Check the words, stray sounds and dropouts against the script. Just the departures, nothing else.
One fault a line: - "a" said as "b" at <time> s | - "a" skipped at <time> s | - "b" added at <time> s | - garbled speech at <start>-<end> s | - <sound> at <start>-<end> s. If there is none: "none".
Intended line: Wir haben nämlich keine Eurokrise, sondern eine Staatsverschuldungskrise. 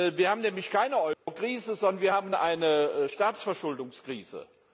- dropout at 1.1-1.3 s
- "wir haben" added at 2.0 s